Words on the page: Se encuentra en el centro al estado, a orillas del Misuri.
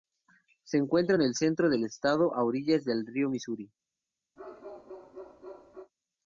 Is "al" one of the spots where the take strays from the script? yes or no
yes